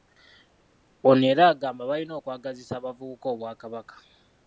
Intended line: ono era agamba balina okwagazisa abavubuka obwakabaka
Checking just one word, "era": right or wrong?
right